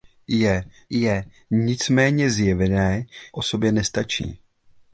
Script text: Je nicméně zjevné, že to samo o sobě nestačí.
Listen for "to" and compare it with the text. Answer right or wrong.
wrong